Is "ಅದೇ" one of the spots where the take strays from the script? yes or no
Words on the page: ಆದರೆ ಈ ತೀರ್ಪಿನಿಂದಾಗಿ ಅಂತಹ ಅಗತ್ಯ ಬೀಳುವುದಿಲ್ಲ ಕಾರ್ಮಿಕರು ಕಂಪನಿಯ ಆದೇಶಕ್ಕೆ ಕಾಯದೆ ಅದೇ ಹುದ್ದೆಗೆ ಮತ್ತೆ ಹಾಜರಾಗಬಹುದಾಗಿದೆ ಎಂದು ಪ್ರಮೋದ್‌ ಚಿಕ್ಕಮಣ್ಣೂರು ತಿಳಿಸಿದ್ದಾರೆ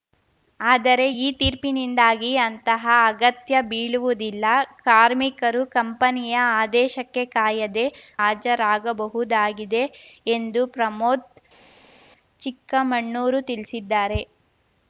yes